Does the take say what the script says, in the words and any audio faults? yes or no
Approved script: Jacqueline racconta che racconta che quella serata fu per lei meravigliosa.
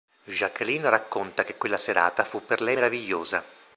no